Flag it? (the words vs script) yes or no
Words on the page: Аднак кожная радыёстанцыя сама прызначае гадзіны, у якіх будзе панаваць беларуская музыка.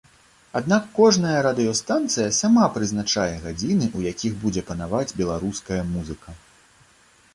no